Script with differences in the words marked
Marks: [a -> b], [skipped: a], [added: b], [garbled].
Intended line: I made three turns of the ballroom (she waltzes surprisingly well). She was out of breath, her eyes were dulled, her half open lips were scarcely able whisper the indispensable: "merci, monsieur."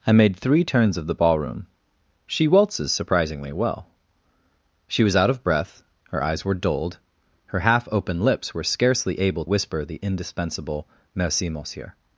I made three turns of the ballroom (she waltzes surprisingly well). She was out of breath, her eyes were dulled, her half open lips were scarcely able whisper the indispensable: "merci, monsieur."